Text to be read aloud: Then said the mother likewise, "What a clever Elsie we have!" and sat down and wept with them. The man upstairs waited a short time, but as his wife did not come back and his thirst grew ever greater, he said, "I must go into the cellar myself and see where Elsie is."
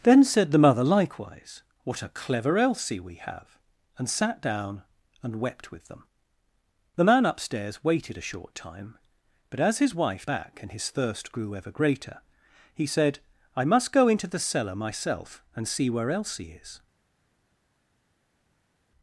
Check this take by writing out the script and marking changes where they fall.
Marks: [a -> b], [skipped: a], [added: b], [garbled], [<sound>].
Then said the mother likewise, "What a clever Elsie we have!" and sat down and wept with them. The man upstairs waited a short time, but as his wife [skipped: did not come] back and his thirst grew ever greater, he said, "I must go into the cellar myself and see where Elsie is."